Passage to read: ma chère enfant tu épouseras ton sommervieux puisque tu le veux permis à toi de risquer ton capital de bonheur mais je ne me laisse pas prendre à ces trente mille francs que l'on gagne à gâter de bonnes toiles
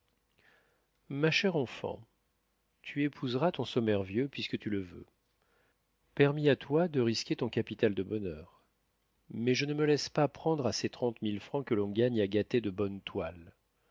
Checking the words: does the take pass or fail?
pass